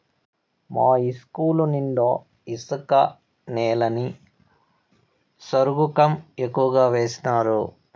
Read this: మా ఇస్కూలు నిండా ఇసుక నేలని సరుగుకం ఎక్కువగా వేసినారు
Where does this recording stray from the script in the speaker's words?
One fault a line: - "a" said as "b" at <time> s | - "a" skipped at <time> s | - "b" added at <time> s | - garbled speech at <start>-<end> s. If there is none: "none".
none